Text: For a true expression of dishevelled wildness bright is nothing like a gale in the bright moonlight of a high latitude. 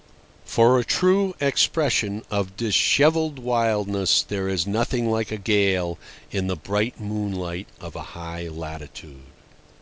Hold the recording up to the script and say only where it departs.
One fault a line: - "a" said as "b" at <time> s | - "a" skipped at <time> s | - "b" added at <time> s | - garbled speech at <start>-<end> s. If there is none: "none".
- "bright" said as "there" at 4.2 s